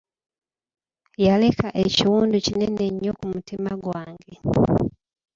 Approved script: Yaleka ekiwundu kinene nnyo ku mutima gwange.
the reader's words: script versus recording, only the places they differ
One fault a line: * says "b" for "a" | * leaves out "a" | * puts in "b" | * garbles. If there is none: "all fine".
all fine